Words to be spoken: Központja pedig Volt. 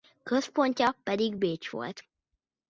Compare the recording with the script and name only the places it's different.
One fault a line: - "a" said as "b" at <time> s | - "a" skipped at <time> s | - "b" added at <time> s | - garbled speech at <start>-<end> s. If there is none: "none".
- "Bécs" added at 1.3 s